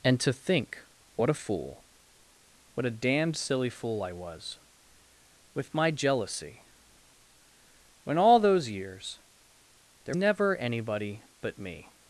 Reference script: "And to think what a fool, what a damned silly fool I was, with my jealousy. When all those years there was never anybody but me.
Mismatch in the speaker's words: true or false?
true